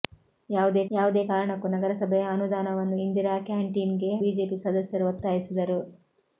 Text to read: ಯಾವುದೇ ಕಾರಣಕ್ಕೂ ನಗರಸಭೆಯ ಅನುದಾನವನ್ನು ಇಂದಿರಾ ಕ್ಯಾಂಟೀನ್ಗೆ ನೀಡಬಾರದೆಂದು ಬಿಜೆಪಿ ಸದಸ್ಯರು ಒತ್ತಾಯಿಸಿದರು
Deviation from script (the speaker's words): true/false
true